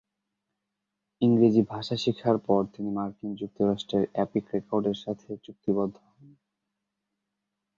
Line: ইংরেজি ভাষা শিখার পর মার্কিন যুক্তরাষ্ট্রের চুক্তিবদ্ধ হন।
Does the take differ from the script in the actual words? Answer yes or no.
yes